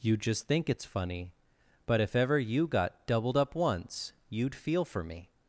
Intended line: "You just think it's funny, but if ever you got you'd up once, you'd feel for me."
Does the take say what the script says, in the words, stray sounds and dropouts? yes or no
no